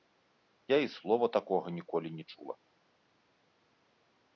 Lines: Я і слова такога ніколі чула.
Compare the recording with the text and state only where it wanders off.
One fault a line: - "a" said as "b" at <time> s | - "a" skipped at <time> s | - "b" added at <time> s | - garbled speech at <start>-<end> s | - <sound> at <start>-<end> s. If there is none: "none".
- "не" added at 2.1 s